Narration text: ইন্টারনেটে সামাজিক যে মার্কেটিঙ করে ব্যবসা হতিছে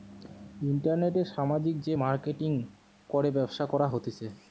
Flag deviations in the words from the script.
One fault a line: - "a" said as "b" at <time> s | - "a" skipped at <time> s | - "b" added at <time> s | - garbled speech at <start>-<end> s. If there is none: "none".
- "করা" added at 3.7 s